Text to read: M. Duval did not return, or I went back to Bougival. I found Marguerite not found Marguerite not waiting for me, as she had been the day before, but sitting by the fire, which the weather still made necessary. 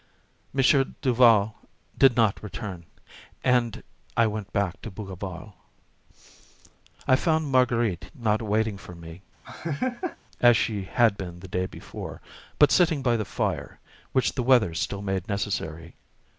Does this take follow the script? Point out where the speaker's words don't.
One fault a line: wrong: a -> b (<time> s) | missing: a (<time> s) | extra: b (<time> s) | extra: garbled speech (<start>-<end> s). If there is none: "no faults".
wrong: or -> and (3.4 s)
missing: found Marguerite not (8.4 s)